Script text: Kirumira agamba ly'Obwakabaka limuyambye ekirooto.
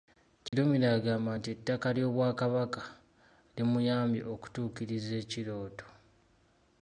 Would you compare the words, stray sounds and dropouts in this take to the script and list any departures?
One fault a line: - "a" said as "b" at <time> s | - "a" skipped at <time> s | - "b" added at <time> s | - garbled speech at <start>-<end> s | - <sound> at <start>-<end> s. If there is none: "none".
- dropout at 0.5-0.5 s
- "nti ettaka" added at 1.4 s
- "okutuukiriza" added at 4.3 s